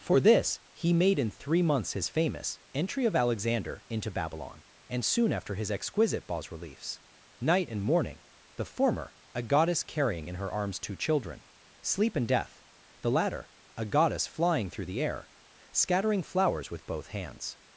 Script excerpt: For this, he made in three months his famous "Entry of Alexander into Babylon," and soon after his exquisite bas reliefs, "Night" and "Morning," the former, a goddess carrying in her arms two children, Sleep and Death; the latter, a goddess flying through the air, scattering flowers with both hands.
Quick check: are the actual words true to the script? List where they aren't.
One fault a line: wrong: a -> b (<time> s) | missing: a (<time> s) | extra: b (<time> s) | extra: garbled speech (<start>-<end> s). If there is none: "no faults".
no faults